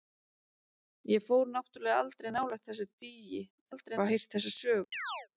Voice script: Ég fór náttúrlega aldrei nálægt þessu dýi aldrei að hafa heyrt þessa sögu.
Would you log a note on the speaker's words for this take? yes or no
no